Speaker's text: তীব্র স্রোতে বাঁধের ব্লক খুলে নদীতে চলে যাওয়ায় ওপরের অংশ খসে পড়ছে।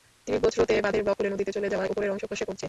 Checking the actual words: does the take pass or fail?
pass